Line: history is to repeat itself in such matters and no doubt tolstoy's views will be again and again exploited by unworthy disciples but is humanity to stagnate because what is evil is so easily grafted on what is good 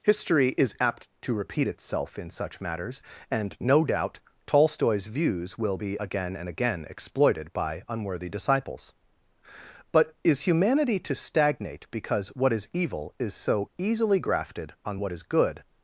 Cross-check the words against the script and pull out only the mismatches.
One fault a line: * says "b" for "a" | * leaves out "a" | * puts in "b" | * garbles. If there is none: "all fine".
* puts in "apt"